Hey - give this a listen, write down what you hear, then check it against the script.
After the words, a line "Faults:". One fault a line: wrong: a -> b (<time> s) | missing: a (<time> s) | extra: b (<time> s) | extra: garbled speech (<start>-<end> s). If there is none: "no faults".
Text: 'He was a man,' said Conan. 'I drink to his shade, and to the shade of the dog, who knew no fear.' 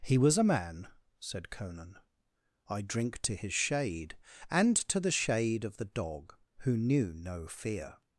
'He was a man,' said Conan. 'I drink to his shade, and to the shade of the dog, who knew no fear.'
Faults:
no faults